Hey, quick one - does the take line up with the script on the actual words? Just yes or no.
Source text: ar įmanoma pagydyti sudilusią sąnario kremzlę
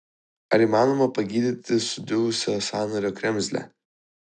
yes